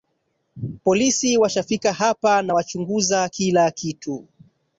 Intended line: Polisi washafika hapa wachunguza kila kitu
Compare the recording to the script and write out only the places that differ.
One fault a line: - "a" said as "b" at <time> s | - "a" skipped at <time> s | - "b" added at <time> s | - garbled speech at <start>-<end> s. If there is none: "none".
- "na" added at 2.4 s